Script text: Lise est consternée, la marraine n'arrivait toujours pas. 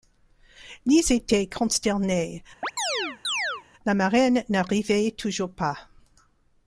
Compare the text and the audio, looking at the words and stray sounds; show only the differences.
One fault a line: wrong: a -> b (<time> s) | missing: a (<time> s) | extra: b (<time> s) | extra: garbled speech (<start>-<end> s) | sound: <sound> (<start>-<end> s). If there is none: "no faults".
wrong: est -> était (1.1 s)
sound: chirp (2.6-3.6 s)